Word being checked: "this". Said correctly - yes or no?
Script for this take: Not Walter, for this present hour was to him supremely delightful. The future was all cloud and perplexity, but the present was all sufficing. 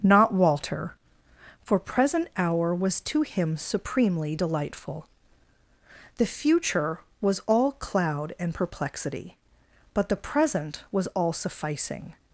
no